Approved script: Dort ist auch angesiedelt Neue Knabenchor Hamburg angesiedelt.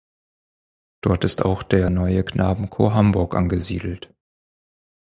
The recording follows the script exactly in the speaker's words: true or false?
false